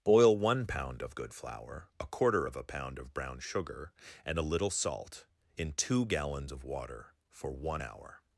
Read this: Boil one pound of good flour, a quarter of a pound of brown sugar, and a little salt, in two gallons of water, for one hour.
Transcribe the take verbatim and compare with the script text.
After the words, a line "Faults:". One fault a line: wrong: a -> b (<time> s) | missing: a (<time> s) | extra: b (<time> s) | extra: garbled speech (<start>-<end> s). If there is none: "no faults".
Boil one pound of good flour, a quarter of a pound of brown sugar, and a little salt, in two gallons of water, for one hour.
Faults:
no faults